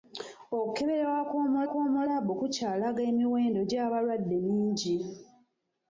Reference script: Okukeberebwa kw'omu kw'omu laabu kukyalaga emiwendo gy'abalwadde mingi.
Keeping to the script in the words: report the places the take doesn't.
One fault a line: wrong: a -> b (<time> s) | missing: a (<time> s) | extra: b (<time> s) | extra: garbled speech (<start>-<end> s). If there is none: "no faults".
no faults